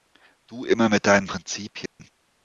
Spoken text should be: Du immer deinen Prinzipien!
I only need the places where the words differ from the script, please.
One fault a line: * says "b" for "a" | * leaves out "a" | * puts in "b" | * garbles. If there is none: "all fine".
* puts in "mit"